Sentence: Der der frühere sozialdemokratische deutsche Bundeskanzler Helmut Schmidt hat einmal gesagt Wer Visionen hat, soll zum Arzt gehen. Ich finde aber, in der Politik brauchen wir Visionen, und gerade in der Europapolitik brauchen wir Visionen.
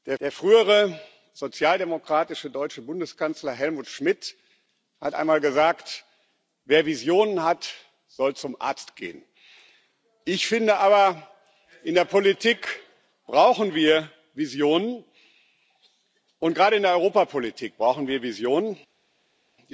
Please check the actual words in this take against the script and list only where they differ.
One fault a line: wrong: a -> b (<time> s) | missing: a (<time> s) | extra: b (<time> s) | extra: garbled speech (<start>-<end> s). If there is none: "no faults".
no faults